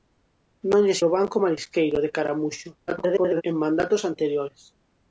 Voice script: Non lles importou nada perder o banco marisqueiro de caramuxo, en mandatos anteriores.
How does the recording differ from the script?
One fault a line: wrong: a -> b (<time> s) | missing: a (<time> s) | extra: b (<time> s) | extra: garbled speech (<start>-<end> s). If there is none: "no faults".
missing: importou nada perder (1.0 s)
extra: garbled speech (2.9-3.4 s)